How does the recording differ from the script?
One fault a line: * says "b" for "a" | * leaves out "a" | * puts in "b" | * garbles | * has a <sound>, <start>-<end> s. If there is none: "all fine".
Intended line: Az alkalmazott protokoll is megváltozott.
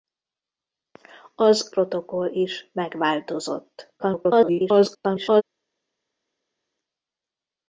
* leaves out "alkalmazott"
* garbles